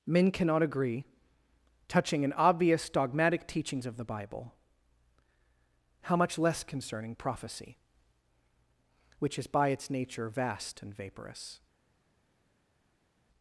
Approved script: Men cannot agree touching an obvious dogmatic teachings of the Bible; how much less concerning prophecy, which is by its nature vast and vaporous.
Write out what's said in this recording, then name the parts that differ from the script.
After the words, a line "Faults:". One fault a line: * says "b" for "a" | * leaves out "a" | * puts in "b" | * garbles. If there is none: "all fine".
Men cannot agree touching an obvious dogmatic teachings of the Bible; how much less concerning prophecy, which is by its nature vast and vaporous.
Faults:
all fine